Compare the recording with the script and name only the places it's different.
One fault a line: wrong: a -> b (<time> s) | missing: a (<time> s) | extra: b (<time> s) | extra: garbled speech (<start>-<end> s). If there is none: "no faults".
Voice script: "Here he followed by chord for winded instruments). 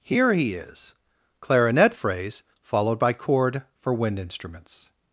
extra: is clarinet phrase (0.6 s)
wrong: winded -> wind (3.9 s)